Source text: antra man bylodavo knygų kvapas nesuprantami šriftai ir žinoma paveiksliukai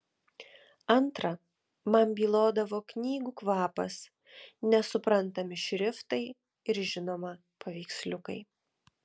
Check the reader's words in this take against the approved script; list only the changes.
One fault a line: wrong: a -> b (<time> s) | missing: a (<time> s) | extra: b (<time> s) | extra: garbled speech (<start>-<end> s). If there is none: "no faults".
no faults